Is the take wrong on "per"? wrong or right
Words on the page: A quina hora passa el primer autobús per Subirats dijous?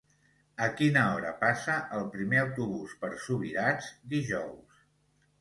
right